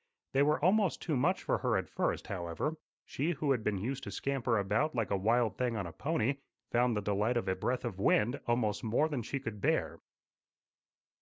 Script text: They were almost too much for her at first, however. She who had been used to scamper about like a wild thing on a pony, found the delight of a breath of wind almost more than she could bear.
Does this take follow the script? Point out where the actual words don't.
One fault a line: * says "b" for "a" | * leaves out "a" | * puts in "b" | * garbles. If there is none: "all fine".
all fine